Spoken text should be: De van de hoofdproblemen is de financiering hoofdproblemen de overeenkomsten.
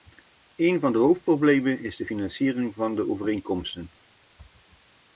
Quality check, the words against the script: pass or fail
fail